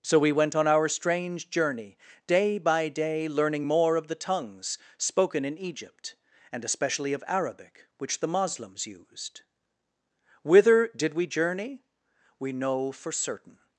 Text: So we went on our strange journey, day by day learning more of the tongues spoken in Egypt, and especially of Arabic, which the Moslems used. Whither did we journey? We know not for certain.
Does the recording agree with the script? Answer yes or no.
no